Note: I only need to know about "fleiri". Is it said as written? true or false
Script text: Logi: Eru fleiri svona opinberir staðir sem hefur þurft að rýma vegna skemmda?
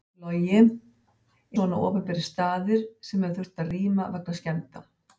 false